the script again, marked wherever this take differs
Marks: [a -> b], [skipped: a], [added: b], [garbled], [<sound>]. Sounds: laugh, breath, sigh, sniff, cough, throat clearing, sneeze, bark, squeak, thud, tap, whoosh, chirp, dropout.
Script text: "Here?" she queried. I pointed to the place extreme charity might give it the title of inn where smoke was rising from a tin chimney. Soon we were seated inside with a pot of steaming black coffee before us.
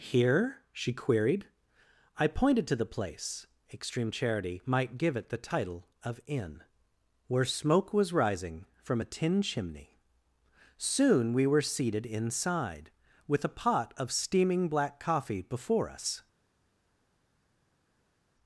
"Here?" she queried. I pointed to the place extreme charity might give it the title of inn where smoke was rising from a tin chimney. Soon we were seated inside with a pot of steaming black coffee before us.